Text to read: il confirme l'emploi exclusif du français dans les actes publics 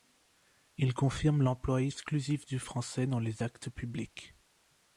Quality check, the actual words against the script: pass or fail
pass